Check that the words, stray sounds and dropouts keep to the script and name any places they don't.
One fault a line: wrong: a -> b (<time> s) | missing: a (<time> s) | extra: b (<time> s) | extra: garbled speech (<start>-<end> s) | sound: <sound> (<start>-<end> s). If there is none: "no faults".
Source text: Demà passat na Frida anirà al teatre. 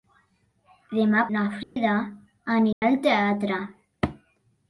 missing: passat (1.2 s)
sound: dropout (1.6-1.8 s)
sound: dropout (2.7-2.8 s)